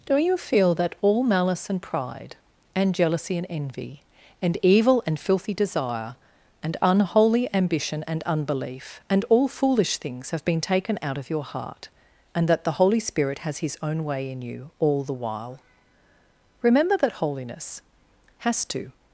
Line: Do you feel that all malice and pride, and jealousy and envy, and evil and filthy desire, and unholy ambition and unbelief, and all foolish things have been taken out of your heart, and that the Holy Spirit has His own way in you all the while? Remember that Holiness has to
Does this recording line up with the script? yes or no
yes